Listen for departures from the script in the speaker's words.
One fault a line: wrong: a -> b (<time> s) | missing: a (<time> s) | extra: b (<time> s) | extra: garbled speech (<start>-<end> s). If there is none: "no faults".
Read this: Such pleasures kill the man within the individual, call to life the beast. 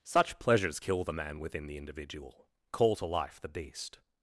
no faults